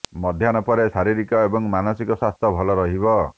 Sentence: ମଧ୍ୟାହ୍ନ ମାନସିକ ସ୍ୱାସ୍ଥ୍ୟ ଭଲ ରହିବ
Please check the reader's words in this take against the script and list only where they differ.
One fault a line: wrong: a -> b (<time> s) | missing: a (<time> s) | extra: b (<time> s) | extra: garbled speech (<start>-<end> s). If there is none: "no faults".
extra: ପରେ ଶାରୀରିକ ଏବଂ (0.7 s)